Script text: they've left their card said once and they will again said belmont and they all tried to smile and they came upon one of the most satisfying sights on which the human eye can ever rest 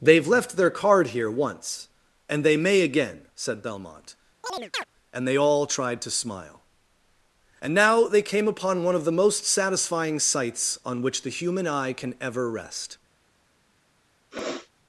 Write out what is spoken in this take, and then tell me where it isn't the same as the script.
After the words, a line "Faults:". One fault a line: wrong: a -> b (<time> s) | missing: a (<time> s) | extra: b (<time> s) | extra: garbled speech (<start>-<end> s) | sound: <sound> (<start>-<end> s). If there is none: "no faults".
they've left their card here once and they may again said belmont and they all tried to smile and now they came upon one of the most satisfying sights on which the human eye can ever rest
Faults:
wrong: said -> here (1.1 s)
wrong: will -> may (2.6 s)
sound: chirp (4.4-4.8 s)
extra: now (7.7 s)
sound: sniff (14.3-14.7 s)